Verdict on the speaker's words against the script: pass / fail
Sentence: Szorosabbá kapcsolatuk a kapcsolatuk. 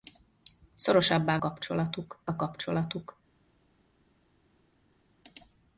pass